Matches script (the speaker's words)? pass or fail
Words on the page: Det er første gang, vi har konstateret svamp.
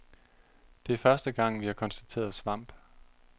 pass